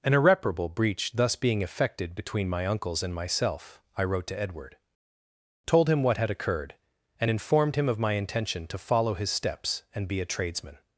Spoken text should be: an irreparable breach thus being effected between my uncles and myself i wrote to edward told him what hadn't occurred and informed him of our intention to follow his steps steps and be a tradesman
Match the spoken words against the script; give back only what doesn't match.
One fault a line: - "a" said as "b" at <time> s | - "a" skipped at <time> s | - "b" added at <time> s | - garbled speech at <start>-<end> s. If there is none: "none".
- "hadn't" said as "had" at 6.2 s
- "our" said as "my" at 8.0 s
- "steps" skipped at 9.8 s